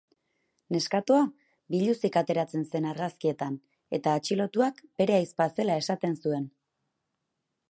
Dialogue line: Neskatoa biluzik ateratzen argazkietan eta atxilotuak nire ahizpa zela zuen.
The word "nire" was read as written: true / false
false